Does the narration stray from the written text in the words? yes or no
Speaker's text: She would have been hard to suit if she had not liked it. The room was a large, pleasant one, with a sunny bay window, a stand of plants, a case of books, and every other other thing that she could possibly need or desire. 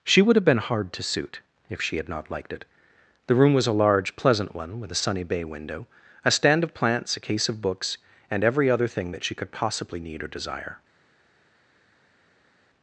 yes